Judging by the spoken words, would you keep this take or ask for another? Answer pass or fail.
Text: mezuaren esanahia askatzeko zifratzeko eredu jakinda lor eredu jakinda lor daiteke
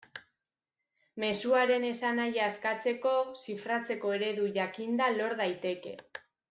fail